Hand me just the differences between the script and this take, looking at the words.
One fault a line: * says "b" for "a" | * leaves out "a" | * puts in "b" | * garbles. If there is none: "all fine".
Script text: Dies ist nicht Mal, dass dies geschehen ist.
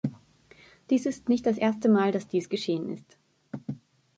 * puts in "das erste"